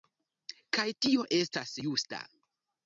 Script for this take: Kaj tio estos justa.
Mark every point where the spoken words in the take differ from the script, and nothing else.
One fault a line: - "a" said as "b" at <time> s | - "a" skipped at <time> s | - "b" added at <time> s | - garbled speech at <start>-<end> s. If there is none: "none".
- "estos" said as "estas" at 1.4 s